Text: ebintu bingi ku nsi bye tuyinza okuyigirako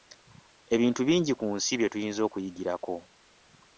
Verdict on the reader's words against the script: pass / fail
pass